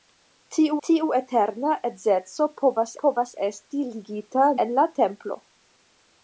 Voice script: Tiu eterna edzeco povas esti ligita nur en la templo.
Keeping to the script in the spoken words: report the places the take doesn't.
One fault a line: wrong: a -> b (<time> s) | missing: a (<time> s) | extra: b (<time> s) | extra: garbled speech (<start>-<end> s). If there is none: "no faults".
extra: tiu (0.9 s)
extra: povas (3.0 s)
missing: nur (4.5 s)